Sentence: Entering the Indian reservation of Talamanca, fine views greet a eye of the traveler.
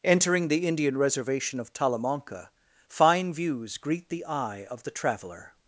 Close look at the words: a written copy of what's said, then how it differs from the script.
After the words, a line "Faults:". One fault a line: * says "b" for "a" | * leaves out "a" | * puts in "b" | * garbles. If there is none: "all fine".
Entering the Indian reservation of Talamanca, fine views greet the eye of the traveler.
Faults:
* says "the" for "a"